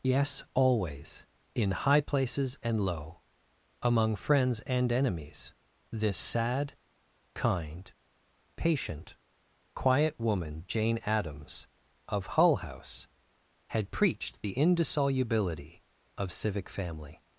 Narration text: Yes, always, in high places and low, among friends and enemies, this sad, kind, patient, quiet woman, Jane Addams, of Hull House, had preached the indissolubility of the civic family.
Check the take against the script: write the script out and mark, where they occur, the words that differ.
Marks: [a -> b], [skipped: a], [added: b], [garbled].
Yes, always, in high places and low, among friends and enemies, this sad, kind, patient, quiet woman, Jane Addams, of Hull House, had preached the indissolubility of [skipped: the] civic family.